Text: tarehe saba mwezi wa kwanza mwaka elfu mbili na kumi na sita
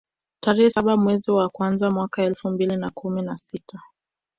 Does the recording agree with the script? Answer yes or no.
yes